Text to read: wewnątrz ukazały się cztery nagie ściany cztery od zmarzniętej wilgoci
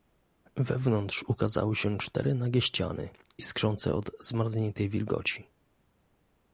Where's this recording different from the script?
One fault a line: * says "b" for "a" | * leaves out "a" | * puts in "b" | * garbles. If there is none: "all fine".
* says "iskrzące" for "cztery"